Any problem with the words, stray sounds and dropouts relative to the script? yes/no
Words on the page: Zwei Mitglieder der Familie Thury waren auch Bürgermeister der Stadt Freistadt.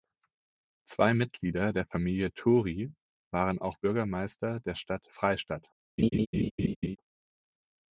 yes